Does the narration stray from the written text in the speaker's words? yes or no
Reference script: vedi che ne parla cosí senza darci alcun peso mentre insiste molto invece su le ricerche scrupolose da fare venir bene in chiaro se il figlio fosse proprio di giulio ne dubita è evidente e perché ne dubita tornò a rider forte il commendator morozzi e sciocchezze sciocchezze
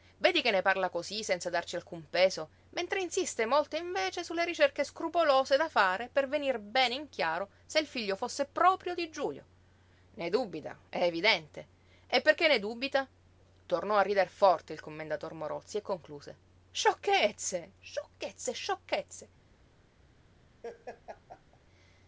yes